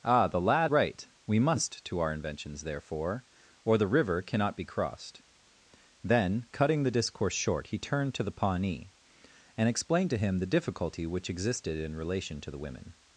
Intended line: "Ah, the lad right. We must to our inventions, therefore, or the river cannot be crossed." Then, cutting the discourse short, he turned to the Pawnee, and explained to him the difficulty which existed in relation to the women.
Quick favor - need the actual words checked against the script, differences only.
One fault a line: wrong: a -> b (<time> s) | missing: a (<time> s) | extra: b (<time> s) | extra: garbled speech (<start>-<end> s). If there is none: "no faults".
no faults